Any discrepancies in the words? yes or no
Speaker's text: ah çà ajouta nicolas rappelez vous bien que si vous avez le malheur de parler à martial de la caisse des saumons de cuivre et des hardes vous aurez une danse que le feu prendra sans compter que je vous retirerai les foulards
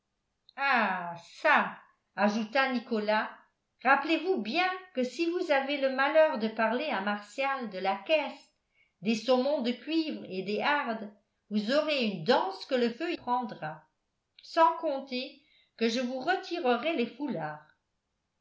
no